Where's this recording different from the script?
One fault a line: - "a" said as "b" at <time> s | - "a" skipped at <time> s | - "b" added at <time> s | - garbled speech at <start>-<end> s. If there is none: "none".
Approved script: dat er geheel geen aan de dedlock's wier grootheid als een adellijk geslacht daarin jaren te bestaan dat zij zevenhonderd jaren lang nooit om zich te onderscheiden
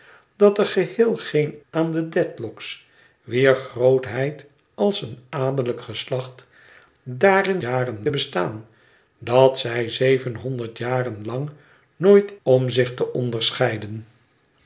none